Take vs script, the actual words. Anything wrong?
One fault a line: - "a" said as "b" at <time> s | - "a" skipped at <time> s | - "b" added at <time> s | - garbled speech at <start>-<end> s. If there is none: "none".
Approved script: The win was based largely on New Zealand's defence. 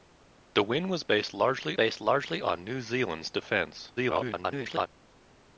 - "based largely" added at 1.7 s
- garbled speech at 4.0-4.9 s